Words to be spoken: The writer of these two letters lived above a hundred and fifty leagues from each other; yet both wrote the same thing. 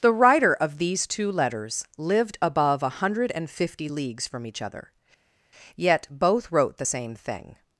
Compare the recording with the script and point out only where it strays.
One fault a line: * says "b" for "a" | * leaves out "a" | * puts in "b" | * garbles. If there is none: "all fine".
all fine